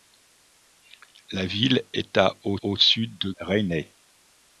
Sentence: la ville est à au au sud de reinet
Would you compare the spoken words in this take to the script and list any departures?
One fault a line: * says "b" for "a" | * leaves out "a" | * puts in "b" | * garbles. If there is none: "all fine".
all fine